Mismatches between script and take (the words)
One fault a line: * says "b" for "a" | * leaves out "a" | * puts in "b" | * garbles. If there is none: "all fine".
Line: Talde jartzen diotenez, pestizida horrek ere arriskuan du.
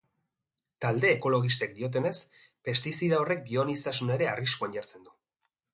* says "ekologistek" for "jartzen"
* puts in "bioaniztasuna"
* puts in "jartzen"